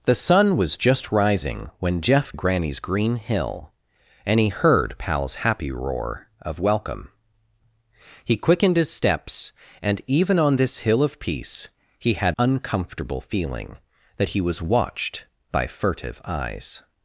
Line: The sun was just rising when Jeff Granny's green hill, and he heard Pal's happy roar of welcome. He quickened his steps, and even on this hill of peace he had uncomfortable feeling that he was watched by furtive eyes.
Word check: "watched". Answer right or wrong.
right